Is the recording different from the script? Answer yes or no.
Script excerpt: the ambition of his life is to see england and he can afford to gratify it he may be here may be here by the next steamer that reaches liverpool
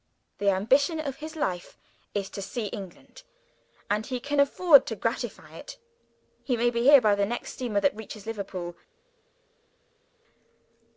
yes